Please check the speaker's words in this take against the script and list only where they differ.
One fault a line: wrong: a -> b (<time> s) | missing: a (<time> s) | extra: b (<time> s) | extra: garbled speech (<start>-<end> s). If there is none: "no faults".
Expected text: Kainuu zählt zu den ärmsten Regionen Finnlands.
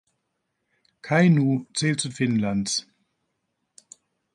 missing: den ärmsten Regionen (2.1 s)